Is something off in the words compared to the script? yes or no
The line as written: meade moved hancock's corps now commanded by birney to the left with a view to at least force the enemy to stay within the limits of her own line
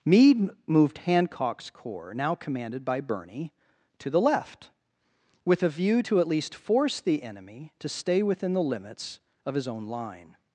yes